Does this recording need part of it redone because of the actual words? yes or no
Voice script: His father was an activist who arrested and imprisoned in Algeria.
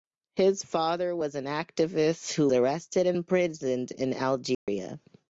no